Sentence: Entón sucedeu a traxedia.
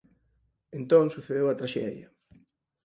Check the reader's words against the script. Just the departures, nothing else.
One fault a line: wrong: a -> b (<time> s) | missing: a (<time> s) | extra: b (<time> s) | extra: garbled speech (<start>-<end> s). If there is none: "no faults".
no faults